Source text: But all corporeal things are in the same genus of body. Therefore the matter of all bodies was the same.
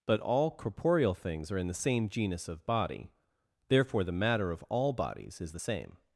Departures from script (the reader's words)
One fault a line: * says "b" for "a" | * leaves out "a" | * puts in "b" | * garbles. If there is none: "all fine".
* says "is" for "was"